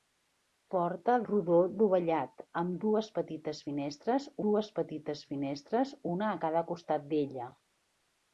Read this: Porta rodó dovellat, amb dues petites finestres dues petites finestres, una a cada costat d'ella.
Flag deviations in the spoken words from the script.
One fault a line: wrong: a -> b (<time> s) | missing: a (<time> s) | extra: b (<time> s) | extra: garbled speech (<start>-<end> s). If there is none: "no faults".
no faults